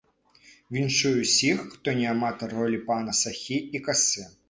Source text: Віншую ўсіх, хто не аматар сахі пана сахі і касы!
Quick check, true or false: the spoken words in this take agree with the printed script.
false